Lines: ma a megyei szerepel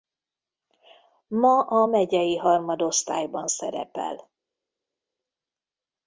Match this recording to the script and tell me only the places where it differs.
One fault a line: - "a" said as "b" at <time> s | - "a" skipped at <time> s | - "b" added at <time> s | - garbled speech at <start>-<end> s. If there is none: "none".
- "harmadosztályban" added at 2.4 s